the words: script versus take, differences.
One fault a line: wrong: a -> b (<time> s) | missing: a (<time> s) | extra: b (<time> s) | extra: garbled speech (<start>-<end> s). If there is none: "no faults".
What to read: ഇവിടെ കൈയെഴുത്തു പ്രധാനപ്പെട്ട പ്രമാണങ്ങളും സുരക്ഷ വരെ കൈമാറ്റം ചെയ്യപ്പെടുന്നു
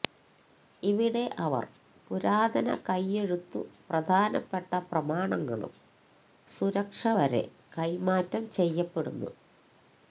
extra: അവർ പുരാതന (1.4 s)